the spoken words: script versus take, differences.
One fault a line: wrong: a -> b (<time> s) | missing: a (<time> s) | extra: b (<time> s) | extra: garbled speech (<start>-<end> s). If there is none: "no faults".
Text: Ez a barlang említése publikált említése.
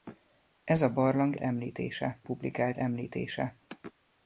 no faults